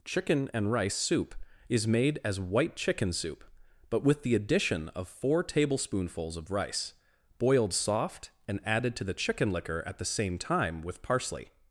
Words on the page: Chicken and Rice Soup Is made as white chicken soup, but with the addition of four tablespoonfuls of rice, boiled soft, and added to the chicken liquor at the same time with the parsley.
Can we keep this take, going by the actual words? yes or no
no